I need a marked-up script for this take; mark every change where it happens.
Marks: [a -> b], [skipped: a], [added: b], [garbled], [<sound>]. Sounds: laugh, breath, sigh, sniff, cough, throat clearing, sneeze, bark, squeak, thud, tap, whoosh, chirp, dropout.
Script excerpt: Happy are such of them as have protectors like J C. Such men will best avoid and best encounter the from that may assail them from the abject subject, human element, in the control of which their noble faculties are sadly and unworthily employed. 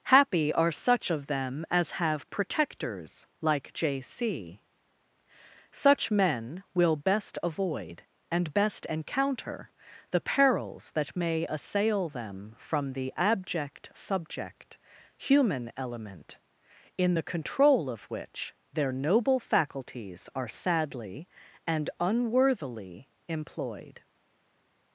Happy are such of them as have protectors like J C. Such men will best avoid and best encounter the [from -> perils] that may assail them from the abject subject, human element, in the control of which their noble faculties are sadly and unworthily employed.